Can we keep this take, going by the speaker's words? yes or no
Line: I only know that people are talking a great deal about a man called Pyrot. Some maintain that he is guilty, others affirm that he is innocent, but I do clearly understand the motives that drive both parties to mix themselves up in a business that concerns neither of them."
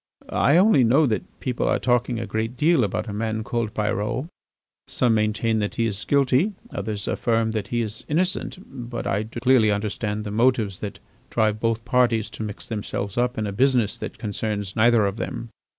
yes